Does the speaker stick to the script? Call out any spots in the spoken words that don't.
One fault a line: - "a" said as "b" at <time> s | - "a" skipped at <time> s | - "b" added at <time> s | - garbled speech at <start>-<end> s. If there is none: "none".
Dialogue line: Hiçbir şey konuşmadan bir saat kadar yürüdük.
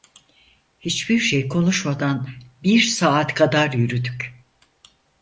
none